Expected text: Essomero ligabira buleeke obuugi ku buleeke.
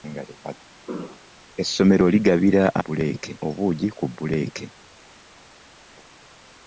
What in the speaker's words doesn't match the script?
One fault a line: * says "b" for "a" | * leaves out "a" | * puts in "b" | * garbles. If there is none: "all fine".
all fine